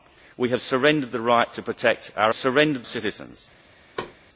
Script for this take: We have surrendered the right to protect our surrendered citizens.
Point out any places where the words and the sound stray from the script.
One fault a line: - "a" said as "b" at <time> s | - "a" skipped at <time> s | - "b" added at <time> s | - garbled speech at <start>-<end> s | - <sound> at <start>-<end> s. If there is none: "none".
- thud at 4.0-4.2 s